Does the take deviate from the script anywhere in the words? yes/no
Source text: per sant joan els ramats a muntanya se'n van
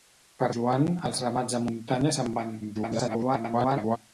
yes